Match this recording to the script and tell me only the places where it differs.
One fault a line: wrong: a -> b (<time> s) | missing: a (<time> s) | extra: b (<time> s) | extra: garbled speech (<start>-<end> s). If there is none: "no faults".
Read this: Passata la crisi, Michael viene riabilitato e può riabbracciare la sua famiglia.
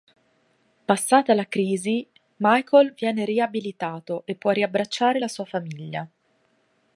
no faults